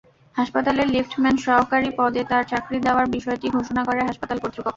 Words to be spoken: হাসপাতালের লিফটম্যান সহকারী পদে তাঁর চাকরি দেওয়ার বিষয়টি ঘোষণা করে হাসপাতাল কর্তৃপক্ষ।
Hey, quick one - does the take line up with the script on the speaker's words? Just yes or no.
yes